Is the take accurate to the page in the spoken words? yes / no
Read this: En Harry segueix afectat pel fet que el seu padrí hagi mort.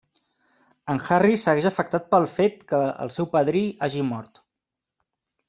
yes